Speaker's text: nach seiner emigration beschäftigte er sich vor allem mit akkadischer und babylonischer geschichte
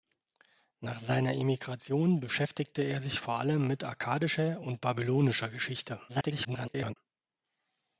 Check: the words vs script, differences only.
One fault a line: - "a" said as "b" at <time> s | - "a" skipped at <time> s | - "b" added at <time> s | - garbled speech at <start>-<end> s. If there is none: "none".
- garbled speech at 6.1-7.0 s